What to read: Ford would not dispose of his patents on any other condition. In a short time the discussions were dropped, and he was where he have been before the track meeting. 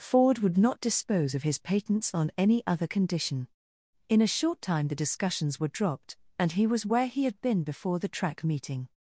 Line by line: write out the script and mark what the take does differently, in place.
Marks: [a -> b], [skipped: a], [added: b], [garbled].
Ford would not dispose of his patents on any other condition. In a short time the discussions were dropped, and he was where he [have -> had] been before the track meeting.